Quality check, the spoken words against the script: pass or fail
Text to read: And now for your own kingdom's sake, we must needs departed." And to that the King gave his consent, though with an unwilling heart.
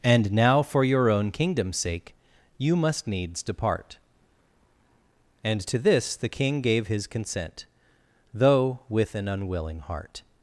fail